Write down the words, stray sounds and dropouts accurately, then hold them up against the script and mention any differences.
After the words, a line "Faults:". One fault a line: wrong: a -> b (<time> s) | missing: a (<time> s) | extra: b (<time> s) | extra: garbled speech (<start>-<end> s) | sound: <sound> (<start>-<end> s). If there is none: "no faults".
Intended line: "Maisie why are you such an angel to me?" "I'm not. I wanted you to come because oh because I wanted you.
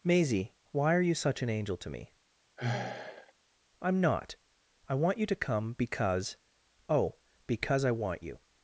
"Maisie why are you such an angel to me?" "I'm not. I want you to come because oh because I want you.
Faults:
sound: sigh (2.6-3.3 s)
wrong: wanted -> want (4.9 s)
wrong: wanted -> want (7.9 s)